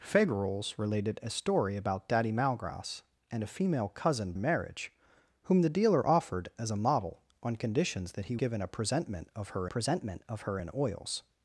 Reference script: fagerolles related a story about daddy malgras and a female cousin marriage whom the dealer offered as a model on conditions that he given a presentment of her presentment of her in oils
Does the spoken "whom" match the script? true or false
true